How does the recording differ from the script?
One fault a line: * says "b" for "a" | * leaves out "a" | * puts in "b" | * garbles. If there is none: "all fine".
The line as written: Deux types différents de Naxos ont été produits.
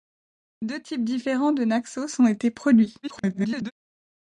* garbles